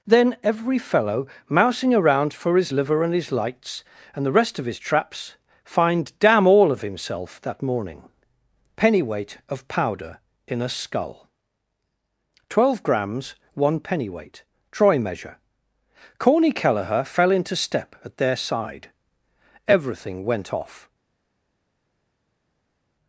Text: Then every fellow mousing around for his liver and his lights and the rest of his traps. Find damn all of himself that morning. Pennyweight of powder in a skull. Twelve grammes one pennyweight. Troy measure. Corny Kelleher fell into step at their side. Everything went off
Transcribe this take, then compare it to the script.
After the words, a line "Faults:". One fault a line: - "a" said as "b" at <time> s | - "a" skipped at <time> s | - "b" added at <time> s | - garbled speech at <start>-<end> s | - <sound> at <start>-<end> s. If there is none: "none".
Then every fellow mousing around for his liver and his lights and the rest of his traps. Find damn all of himself that morning. Pennyweight of powder in a skull. Twelve grammes one pennyweight. Troy measure. Corny Kelleher fell into step at their side. Everything went off
Faults:
none